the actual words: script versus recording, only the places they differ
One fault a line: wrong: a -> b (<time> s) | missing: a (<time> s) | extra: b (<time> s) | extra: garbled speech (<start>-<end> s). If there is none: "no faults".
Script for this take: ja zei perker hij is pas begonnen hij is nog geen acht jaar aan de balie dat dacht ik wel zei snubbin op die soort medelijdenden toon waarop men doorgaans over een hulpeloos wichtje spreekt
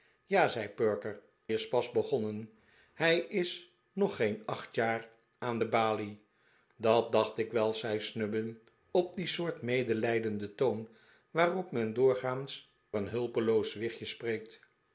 missing: hij (1.2 s)
missing: over (12.7 s)